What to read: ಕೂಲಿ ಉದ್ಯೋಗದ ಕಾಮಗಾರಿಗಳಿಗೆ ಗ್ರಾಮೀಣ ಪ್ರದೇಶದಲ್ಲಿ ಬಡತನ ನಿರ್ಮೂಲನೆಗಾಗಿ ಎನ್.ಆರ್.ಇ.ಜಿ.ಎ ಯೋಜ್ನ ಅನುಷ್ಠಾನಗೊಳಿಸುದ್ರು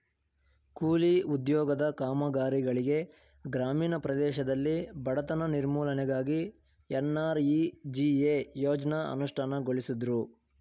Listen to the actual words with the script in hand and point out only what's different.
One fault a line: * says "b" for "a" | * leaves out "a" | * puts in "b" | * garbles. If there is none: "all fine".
all fine